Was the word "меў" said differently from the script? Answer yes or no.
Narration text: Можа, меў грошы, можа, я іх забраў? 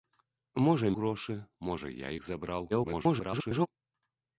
yes